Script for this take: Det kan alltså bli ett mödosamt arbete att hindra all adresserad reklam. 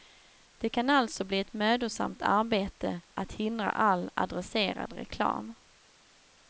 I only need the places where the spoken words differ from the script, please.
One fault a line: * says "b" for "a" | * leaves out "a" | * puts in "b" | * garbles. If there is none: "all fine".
all fine